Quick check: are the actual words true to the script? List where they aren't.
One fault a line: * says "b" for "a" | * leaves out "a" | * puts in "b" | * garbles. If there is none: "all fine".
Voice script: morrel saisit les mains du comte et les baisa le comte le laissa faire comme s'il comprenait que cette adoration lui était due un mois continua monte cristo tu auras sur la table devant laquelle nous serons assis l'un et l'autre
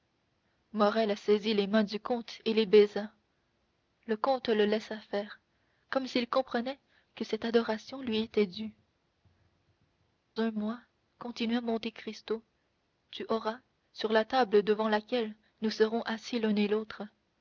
all fine